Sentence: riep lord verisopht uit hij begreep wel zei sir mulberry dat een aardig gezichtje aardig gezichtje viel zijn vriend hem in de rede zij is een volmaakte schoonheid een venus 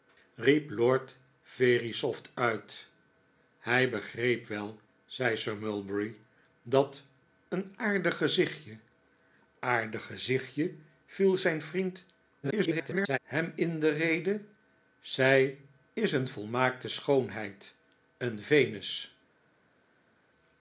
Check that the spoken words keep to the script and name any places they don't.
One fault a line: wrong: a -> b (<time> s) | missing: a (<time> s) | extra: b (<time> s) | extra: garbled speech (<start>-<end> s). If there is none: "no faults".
extra: garbled speech (12.4-13.2 s)